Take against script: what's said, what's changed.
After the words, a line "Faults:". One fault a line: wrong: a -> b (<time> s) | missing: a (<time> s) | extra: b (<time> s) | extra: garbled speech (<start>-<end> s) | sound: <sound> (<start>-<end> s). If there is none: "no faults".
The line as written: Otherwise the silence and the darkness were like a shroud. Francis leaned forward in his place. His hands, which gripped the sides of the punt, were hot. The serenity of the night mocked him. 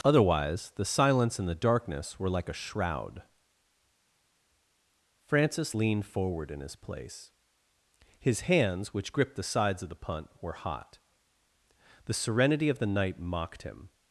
Otherwise the silence and the darkness were like a shroud. Francis leaned forward in his place. His hands, which gripped the sides of the punt, were hot. The serenity of the night mocked him.
Faults:
no faults